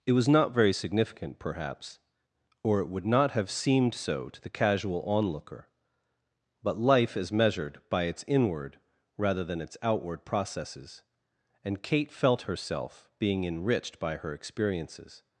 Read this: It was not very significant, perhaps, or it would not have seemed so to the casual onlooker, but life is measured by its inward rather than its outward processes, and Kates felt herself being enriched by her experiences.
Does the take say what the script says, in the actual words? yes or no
no